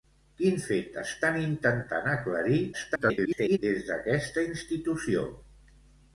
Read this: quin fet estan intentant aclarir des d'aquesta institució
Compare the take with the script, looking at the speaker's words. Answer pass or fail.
fail